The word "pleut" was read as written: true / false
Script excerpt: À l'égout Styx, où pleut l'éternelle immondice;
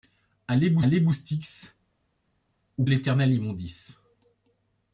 false